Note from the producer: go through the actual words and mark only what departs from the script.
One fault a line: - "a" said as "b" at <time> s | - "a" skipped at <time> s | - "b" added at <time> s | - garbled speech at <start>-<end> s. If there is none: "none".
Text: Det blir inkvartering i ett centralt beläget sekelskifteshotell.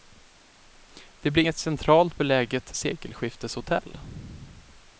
- "inkvartering" skipped at 1.4 s